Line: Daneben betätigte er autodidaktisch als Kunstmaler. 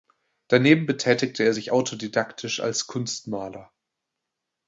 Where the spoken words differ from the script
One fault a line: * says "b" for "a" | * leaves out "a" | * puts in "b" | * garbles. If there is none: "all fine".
* puts in "sich"